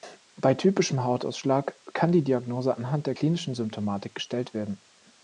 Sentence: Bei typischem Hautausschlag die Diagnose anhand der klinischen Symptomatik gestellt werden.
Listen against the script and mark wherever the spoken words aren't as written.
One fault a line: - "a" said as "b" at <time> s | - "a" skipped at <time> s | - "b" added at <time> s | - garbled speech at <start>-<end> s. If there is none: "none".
- "kann" added at 1.9 s